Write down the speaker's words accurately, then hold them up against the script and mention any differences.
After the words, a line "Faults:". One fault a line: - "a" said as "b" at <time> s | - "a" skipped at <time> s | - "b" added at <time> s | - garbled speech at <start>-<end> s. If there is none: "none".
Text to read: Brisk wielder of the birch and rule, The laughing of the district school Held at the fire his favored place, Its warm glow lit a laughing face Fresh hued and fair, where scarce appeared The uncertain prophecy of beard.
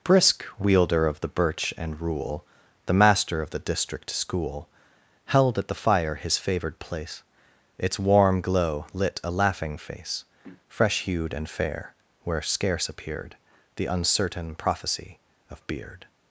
Brisk wielder of the birch and rule, The master of the district school Held at the fire his favored place, Its warm glow lit a laughing face Fresh hued and fair, where scarce appeared The uncertain prophecy of beard.
Faults:
- "laughing" said as "master" at 2.9 s